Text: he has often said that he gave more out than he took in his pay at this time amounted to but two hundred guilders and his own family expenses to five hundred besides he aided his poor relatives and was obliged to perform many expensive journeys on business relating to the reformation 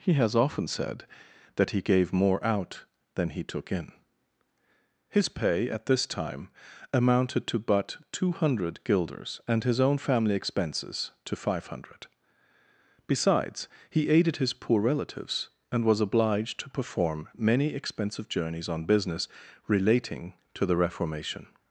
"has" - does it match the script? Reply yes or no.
yes